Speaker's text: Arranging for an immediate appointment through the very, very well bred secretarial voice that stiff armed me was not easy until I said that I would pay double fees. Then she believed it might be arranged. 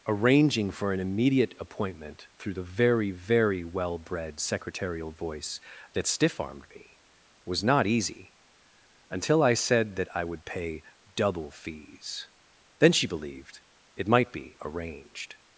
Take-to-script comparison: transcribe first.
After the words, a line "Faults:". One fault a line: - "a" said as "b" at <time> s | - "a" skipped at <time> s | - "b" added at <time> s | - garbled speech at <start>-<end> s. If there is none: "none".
Arranging for an immediate appointment through the very, very well bred secretarial voice that stiff armed me was not easy until I said that I would pay double fees. Then she believed it might be arranged.
Faults:
none